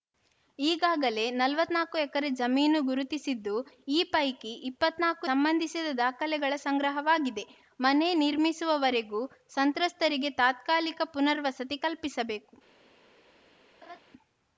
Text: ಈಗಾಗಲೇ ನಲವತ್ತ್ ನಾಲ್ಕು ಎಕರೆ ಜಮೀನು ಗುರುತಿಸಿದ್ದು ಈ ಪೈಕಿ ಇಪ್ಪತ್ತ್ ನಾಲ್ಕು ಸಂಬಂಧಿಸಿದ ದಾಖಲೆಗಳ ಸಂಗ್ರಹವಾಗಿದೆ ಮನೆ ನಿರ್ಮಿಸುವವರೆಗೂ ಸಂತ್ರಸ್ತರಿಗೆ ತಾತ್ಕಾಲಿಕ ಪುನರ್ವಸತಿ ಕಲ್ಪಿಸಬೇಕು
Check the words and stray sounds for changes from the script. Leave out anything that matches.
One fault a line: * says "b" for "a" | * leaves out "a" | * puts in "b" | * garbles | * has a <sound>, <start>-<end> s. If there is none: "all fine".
* has a laugh, 13.8-14.0 s